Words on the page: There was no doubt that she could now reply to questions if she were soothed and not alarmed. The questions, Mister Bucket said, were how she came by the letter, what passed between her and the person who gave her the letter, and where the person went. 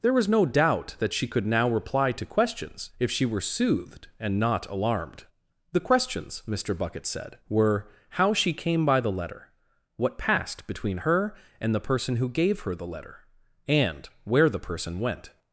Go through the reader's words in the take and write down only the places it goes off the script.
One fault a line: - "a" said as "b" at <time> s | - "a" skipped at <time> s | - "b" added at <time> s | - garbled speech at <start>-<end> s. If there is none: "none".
none